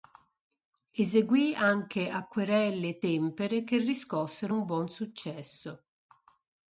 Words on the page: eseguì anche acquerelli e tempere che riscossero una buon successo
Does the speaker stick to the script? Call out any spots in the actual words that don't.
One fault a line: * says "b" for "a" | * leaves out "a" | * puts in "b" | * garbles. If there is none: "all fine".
* says "un" for "una"